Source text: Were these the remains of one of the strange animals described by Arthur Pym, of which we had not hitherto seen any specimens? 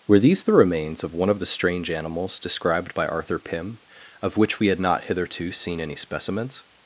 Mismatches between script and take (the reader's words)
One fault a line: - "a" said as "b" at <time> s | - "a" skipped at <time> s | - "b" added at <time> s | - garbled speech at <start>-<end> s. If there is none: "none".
none